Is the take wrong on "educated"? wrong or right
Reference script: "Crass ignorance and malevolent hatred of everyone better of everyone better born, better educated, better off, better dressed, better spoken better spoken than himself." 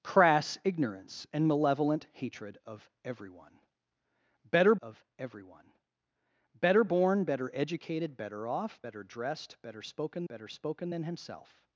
right